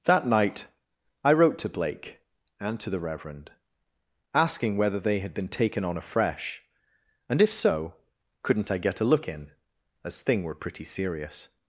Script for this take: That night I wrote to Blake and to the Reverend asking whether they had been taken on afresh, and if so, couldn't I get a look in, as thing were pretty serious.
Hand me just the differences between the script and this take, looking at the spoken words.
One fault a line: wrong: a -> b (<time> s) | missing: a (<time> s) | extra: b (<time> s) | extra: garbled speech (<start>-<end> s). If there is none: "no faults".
no faults